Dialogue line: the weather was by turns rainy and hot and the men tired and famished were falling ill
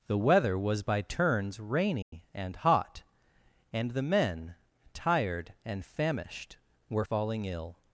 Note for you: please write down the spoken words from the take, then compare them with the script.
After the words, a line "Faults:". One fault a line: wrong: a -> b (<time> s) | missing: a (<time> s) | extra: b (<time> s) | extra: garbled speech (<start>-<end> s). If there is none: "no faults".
the weather was by turns rainy and hot and the men tired and famished were falling ill
Faults:
no faults